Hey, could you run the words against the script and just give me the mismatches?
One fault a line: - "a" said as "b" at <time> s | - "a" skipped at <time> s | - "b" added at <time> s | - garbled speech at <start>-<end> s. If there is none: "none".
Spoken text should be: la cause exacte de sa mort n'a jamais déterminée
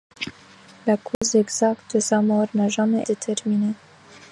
none